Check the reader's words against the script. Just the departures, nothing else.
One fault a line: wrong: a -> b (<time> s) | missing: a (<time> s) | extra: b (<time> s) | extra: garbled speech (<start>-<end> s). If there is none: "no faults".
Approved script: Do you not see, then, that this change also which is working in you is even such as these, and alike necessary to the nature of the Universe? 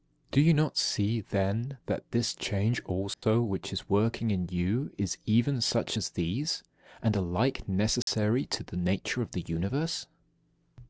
no faults